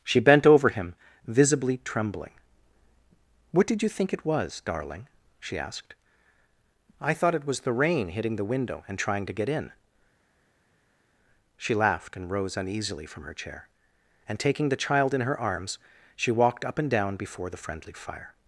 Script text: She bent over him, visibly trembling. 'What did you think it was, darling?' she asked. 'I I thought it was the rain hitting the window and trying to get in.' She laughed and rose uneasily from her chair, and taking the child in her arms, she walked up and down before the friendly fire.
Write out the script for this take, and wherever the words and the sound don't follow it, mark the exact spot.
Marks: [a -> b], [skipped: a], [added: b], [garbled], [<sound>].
She bent over him, visibly trembling. 'What did you think it was, darling?' she asked. 'I [skipped: I] thought it was the rain hitting the window and trying to get in.' She laughed and rose uneasily from her chair, and taking the child in her arms, she walked up and down before the friendly fire.